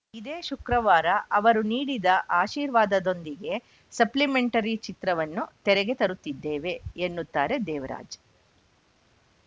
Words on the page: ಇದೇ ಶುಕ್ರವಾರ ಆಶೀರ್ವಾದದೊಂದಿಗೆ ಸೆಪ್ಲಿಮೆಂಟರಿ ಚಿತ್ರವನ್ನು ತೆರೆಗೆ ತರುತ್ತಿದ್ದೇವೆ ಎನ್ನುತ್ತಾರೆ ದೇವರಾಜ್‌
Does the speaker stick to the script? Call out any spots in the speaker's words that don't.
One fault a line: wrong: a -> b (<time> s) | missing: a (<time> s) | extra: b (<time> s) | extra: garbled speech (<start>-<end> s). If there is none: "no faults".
extra: ಅವರು ನೀಡಿದ (1.3 s)